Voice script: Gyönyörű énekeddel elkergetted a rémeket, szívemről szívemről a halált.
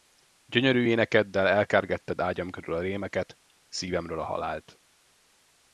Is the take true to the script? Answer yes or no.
no